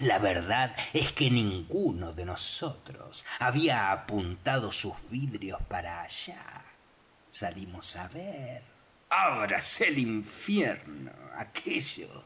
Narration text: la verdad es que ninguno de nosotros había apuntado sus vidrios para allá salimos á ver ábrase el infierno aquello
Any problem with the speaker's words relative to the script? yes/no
no